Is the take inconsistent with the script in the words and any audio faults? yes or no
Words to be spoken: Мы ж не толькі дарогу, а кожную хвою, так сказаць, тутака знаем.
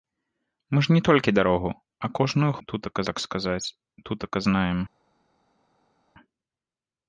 yes